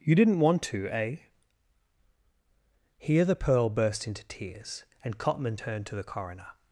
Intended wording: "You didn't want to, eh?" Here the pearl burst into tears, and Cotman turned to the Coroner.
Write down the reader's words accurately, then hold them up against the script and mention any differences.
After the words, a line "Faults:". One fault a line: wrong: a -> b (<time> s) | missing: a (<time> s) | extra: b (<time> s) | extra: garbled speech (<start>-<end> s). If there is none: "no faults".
"You didn't want to, eh?" Here the pearl burst into tears, and Cotman turned to the Coroner.
Faults:
no faults